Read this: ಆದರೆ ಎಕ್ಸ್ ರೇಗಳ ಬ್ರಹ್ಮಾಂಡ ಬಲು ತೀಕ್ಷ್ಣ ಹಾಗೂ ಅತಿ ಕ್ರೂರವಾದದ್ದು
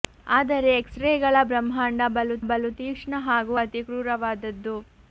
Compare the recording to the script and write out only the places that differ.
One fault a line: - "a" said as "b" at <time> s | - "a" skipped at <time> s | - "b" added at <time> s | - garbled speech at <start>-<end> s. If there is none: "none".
- "ಬಲು" added at 2.5 s